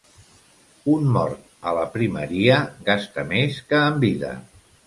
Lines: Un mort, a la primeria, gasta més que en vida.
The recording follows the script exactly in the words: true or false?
true